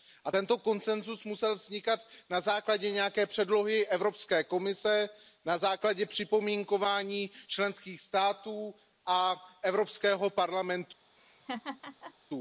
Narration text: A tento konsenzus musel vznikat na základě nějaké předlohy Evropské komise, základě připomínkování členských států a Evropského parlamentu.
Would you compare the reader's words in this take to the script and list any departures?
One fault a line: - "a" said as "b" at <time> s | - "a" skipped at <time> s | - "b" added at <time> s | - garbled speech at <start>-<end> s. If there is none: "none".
- "na" added at 5.4 s